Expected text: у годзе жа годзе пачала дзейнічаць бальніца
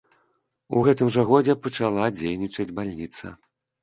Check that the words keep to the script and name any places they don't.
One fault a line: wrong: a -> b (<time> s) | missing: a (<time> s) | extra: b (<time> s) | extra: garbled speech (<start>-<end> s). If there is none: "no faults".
wrong: годзе -> гэтым (0.8 s)